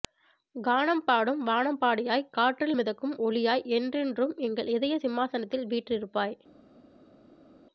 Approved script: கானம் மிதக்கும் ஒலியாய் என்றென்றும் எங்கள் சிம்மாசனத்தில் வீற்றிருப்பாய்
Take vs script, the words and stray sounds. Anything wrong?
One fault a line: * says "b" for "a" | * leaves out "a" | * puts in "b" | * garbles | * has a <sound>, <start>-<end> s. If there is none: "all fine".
* puts in "பாடும் வானம்பாடியாய் காற்றில்"
* puts in "இதய"